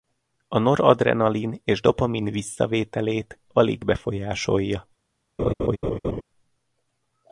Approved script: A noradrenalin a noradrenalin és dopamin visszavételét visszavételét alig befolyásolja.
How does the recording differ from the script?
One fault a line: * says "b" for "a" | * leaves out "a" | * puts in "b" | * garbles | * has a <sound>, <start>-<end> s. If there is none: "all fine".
* leaves out "a noradrenalin"
* leaves out "visszavételét"
* has a laugh, 5.4-6.2 s